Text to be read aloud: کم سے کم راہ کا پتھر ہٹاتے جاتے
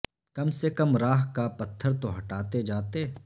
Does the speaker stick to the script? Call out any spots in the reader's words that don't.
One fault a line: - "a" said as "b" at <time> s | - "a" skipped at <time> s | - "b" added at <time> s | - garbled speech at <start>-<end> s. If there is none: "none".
- "تو" added at 2.0 s